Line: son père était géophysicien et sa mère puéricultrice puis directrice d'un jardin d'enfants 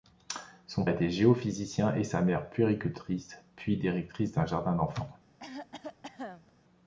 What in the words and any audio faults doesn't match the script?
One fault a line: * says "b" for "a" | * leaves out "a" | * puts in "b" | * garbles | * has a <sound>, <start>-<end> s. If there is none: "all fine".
* leaves out "père"
* has a cough, 5.4-6.5 s